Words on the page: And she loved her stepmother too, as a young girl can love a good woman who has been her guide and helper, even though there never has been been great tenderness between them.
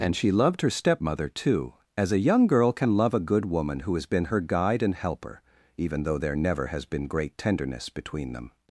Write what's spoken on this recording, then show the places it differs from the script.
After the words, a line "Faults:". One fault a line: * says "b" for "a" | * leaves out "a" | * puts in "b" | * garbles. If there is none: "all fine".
And she loved her stepmother too, as a young girl can love a good woman who has been her guide and helper, even though there never has been great tenderness between them.
Faults:
* leaves out "been"